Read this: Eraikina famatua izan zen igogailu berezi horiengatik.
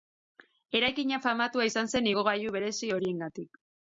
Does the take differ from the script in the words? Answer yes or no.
no